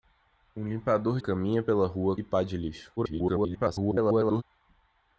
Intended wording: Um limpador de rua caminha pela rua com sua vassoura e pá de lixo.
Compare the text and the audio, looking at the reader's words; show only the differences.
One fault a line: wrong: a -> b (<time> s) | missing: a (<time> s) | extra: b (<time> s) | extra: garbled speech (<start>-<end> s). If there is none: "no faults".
missing: de rua (1.2 s)
missing: com sua vassoura (2.1 s)
extra: garbled speech (3.0-4.4 s)